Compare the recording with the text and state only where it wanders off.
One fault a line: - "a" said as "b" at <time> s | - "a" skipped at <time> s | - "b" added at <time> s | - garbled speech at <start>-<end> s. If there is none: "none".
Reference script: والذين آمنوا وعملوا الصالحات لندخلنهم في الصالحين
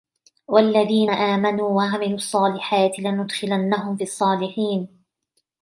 none